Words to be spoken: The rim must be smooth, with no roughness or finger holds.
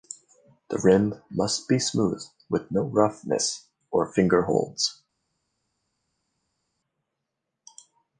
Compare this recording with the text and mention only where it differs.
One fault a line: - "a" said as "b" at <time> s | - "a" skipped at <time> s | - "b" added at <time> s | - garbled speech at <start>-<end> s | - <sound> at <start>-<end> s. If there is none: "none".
none